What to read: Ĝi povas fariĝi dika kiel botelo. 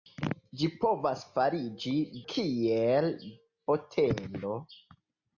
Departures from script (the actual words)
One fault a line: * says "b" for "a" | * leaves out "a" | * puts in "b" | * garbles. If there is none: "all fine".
* leaves out "dika"